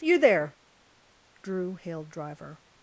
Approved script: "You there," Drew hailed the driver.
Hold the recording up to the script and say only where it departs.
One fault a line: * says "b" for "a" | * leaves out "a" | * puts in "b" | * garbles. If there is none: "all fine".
* leaves out "the"